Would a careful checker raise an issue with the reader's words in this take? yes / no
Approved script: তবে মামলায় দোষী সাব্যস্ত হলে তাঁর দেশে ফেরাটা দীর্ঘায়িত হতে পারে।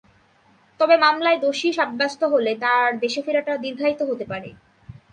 no